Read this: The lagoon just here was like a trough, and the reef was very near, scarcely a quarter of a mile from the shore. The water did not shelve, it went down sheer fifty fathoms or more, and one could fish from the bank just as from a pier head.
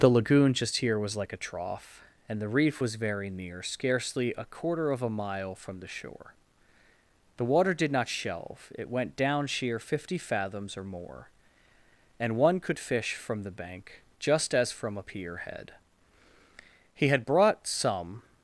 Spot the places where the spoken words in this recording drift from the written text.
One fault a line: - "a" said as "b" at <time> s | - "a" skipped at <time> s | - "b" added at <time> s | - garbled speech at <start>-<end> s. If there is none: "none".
- "He had brought some" added at 17.0 s